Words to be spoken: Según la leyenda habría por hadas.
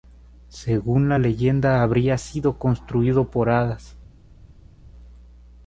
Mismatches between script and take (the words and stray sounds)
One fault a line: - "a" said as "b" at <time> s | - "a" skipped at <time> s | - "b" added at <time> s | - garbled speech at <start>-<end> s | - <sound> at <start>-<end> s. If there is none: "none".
- "sido construido" added at 2.2 s